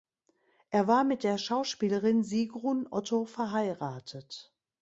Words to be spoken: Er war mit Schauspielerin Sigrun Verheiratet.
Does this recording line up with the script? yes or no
no